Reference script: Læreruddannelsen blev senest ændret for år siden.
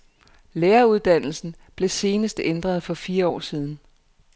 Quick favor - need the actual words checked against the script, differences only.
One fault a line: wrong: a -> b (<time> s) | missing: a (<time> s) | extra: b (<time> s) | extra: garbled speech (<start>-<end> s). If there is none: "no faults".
extra: fire (2.9 s)